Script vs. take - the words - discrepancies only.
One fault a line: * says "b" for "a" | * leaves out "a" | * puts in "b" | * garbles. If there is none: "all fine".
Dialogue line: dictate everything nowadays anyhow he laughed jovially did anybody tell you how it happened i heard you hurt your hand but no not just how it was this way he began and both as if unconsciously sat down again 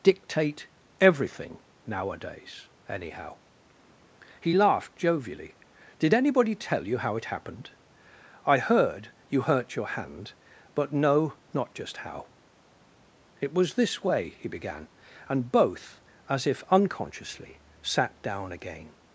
all fine